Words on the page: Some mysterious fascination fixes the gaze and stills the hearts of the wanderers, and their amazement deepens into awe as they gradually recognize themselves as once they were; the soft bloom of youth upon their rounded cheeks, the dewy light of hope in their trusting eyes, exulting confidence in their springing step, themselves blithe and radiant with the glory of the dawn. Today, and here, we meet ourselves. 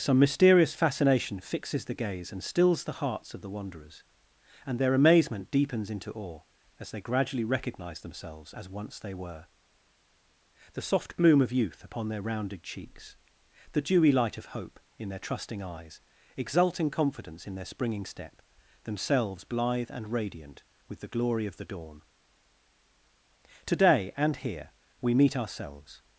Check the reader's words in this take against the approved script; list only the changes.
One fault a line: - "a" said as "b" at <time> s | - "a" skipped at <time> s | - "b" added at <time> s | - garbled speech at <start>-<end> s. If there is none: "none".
none